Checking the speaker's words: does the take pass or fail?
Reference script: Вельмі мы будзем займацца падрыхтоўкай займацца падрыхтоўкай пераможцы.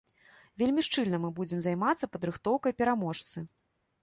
fail